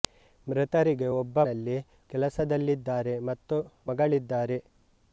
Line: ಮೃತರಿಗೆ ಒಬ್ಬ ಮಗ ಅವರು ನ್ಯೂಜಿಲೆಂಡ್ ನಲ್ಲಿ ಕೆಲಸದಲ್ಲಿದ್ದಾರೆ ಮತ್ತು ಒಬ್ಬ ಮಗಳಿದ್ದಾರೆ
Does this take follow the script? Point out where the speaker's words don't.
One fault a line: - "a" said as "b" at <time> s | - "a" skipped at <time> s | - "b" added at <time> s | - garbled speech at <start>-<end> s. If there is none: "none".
- "ಮಗ ಅವರು ನ್ಯೂಜಿಲೆಂಡ್" skipped at 1.4 s
- "ಒಬ್ಬ" skipped at 3.6 s